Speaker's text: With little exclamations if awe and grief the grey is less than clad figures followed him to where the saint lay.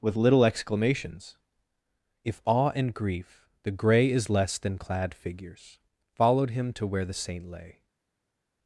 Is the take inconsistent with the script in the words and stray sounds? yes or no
no